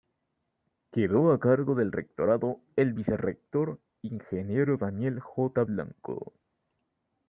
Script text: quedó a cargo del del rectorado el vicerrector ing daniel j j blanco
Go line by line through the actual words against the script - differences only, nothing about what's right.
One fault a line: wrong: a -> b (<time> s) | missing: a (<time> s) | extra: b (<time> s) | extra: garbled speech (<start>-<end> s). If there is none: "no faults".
missing: del (1.9 s)
missing: j (5.6 s)